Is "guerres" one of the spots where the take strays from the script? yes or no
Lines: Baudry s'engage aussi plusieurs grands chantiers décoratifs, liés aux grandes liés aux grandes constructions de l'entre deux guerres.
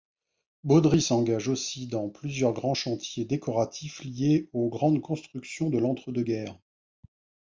no